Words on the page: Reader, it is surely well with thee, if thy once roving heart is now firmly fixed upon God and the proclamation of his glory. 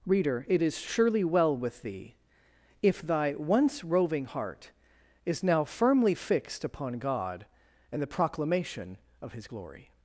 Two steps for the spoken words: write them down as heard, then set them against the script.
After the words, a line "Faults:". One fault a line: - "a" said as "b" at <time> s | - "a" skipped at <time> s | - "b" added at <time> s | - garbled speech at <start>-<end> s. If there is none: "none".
Reader, it is surely well with thee, if thy once roving heart is now firmly fixed upon God and the proclamation of his glory.
Faults:
none